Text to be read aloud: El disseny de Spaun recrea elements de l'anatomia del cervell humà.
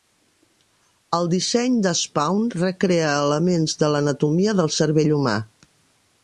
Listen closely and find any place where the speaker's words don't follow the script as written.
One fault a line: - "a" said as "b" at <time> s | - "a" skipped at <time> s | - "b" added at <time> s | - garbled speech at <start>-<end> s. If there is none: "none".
none